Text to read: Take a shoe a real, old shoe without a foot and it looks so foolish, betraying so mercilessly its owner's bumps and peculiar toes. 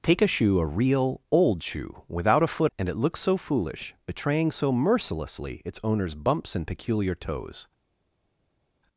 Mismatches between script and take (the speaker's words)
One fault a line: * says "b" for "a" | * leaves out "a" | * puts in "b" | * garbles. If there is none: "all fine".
all fine